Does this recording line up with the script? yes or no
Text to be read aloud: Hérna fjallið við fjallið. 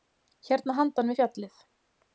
no